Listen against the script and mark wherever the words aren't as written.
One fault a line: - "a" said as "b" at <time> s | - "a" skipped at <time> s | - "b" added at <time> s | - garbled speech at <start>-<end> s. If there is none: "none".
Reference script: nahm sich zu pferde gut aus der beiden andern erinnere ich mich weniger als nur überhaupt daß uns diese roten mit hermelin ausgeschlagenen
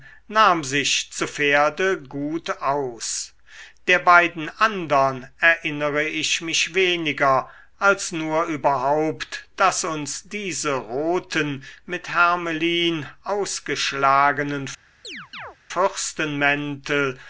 none